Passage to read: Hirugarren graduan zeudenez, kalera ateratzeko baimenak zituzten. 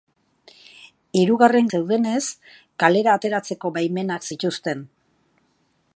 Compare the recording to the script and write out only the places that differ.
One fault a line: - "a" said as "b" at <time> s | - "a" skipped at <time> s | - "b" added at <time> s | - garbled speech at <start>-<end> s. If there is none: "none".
- "graduan" skipped at 1.7 s